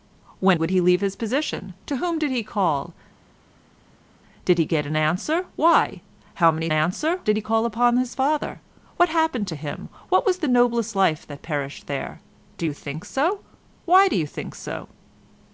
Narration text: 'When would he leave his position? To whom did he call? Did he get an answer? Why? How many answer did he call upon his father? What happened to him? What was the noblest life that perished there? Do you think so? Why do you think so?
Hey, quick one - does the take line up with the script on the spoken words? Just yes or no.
yes